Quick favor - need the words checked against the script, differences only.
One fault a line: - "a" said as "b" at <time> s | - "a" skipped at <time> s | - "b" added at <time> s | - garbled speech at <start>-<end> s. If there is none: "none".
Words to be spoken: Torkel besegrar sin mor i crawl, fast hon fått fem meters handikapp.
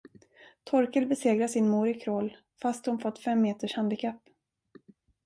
none